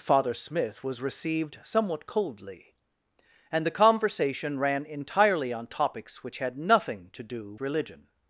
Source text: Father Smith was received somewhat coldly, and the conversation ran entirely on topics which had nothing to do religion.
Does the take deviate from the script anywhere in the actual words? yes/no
no